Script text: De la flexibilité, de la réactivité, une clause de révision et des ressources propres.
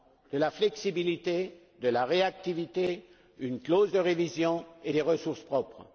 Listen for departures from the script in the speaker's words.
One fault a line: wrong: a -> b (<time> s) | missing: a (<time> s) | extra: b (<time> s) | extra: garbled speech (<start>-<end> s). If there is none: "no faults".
no faults